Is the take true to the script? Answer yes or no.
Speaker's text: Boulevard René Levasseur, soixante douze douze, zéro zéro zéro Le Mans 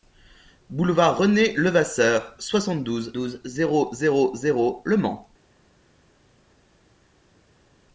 yes